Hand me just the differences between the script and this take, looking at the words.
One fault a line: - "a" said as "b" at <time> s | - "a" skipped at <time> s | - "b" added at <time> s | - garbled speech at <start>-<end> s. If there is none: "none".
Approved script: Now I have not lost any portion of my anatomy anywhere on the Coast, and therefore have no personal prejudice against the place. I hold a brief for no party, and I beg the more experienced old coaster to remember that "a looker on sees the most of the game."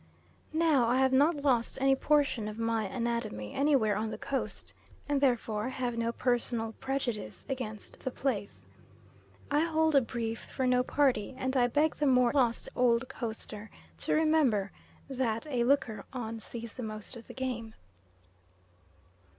- "experienced" said as "lost" at 12.3 s